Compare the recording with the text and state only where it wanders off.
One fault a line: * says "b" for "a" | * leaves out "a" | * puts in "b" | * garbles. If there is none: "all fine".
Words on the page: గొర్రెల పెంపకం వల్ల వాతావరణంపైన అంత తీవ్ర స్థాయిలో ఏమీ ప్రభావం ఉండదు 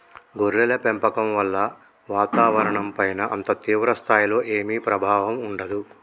all fine